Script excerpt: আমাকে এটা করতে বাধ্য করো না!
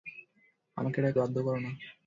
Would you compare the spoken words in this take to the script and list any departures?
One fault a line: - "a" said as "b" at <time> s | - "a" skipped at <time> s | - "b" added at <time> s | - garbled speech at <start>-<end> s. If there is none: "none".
- "করতে" skipped at 1.2 s